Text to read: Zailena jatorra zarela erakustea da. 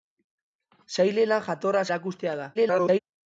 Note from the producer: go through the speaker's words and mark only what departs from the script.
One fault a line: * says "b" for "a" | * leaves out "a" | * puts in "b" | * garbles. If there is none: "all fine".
* leaves out "zarela"
* garbles